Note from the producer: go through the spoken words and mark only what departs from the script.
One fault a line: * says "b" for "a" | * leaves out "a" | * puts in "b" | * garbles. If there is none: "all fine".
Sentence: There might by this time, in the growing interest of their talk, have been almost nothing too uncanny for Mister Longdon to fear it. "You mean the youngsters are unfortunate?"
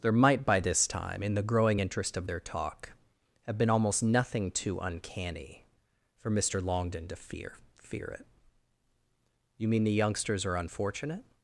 * puts in "fear"